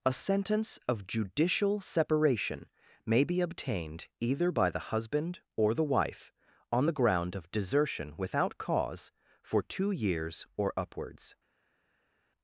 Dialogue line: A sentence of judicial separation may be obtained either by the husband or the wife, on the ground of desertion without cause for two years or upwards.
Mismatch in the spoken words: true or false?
false